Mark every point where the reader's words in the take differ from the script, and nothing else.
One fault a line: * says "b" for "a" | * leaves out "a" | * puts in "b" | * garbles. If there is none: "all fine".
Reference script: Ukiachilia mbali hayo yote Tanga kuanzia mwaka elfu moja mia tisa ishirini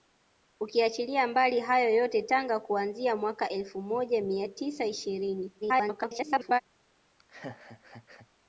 * garbles